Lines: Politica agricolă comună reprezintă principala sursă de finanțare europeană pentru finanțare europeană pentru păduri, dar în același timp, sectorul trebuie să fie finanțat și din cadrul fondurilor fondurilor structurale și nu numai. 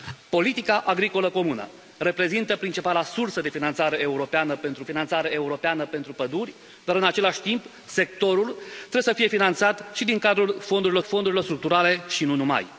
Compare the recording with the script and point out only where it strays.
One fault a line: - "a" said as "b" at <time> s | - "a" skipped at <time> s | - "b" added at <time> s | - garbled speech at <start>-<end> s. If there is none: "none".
none